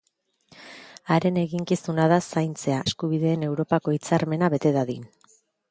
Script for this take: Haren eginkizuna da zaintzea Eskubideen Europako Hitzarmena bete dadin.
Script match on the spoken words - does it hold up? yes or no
yes